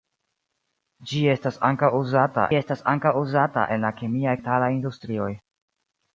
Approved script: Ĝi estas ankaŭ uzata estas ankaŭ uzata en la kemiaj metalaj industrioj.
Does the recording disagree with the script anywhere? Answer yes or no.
no